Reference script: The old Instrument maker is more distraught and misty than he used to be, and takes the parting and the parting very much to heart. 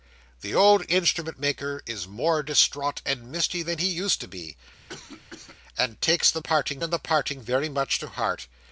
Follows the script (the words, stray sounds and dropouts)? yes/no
no